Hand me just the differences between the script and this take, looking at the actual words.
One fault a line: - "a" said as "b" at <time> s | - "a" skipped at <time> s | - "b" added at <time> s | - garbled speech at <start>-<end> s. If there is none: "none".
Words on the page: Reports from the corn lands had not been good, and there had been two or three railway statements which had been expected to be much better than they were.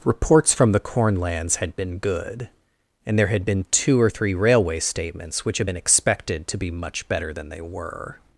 - "not" skipped at 1.8 s